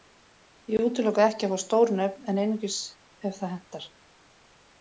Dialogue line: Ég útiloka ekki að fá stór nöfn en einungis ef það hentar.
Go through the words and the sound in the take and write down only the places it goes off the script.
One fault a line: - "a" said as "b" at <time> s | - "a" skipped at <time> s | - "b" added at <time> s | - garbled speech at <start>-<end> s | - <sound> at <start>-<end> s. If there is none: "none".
none